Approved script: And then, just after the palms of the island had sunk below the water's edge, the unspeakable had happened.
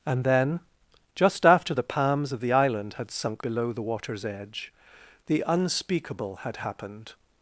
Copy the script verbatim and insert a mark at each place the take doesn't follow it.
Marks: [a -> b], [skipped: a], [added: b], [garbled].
And then, just after the palms of the island had sunk below the water's edge, the unspeakable had happened.